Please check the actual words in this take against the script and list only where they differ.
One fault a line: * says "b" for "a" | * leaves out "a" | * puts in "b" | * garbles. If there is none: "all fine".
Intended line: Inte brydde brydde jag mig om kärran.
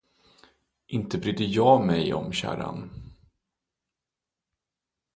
* leaves out "brydde"